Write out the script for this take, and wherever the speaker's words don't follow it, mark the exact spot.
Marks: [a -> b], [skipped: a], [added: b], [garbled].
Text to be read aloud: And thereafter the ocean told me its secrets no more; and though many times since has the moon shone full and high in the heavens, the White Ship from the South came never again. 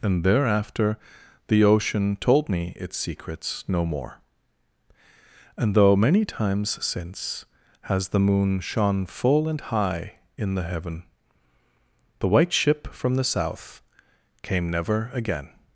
And thereafter the ocean told me its secrets no more; and though many times since has the moon shone full and high in the [heavens, -> heaven] the White Ship from the South came never again.